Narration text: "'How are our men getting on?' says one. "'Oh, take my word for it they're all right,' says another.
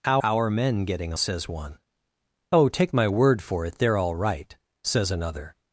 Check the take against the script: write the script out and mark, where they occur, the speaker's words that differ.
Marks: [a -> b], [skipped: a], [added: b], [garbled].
"'How [skipped: are] our men getting [skipped: on?'] says one. "'Oh, take my word for it they're all right,' says another.